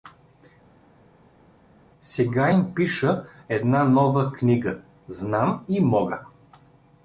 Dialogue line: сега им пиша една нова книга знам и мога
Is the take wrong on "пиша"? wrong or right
right